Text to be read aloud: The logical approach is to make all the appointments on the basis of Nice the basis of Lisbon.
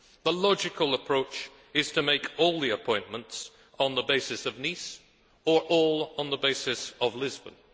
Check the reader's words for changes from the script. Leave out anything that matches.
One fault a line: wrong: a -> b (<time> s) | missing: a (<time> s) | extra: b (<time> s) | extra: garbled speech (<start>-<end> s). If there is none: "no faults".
extra: or all on (5.4 s)